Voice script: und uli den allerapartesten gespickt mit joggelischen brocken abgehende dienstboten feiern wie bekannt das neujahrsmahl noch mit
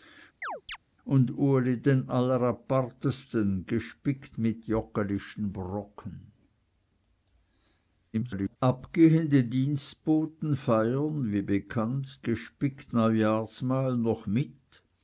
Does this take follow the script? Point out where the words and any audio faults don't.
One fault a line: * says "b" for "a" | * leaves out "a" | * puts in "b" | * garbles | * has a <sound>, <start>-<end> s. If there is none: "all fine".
* has a chirp, 0.4-0.8 s
* garbles
* says "gespickt" for "das"